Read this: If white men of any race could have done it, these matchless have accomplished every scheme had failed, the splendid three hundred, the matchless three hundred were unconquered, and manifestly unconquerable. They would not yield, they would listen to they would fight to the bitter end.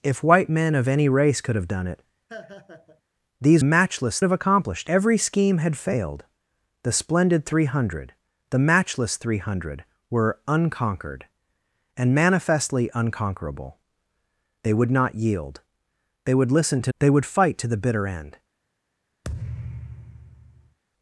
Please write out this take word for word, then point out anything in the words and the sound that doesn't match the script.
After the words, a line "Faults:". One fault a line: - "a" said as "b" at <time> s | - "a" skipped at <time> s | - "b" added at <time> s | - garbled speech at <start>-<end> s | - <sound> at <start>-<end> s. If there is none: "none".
If white men of any race could have done it, these matchless have accomplished every scheme had failed, the splendid three hundred, the matchless three hundred were unconquered, and manifestly unconquerable. They would not yield, they would listen to they would fight to the bitter end.
Faults:
- laugh at 2.3-3.0 s
- thud at 19.2-20.8 s